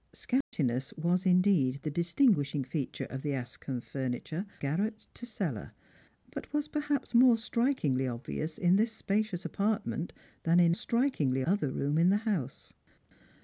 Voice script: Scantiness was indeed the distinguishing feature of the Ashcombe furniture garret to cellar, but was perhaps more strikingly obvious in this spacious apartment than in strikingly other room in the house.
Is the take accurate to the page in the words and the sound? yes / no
no